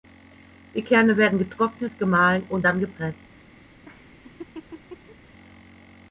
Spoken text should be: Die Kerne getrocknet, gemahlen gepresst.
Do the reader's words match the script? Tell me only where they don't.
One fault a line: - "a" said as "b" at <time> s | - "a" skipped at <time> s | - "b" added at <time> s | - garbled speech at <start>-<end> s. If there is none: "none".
- "werden" added at 1.1 s
- "und dann" added at 2.5 s